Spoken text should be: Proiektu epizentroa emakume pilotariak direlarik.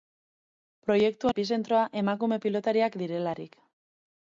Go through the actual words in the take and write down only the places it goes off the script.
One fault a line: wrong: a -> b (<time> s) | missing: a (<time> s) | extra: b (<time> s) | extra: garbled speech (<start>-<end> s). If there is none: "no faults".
no faults